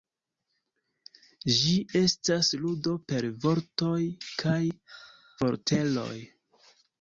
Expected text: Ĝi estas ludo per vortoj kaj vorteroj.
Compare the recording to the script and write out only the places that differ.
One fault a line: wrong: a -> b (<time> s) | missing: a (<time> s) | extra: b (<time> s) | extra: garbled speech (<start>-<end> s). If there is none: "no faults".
no faults